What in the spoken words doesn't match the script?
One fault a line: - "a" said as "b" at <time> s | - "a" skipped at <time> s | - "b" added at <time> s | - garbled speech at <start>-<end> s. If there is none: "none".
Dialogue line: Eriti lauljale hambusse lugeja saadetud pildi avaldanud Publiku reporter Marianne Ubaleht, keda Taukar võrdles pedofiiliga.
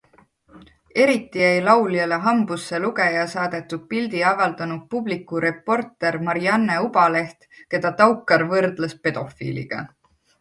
- "jäi" added at 1.4 s